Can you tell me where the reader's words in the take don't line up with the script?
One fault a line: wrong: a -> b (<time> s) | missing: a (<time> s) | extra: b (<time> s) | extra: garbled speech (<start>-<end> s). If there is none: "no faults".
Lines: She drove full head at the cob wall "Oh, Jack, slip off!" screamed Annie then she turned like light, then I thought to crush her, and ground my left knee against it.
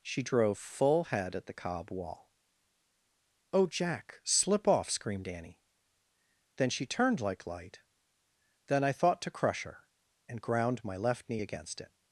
no faults